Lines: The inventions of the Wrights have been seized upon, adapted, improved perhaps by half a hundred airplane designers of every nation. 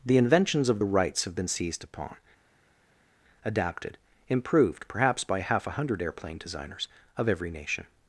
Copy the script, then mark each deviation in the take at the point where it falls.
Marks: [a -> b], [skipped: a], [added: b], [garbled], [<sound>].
The inventions of the Wrights have been seized upon, adapted, improved perhaps by half a hundred airplane designers of every nation.